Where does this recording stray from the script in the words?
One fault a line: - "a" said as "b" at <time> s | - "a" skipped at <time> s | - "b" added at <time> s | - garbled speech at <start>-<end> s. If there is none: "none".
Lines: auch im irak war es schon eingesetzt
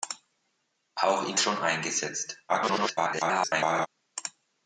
- "irak war" skipped at 1.4 s
- garbled speech at 2.5-3.9 s